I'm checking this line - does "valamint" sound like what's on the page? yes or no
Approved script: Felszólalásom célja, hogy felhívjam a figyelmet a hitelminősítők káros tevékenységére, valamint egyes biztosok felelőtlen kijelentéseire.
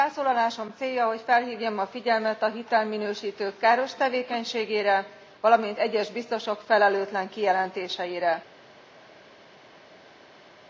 yes